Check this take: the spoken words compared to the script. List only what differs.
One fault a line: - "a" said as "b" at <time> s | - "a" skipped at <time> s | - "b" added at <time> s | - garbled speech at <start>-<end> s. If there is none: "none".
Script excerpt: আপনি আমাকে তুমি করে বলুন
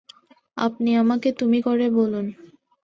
none